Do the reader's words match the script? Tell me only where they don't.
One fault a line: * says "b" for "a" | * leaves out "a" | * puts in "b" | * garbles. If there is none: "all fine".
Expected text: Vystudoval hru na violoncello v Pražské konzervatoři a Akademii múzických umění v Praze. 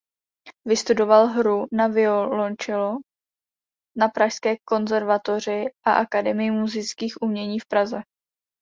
* says "na" for "v"